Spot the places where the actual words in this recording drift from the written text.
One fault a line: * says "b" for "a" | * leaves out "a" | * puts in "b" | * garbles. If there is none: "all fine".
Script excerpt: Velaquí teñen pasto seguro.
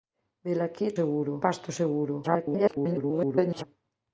* says "seguro" for "teñen"
* garbles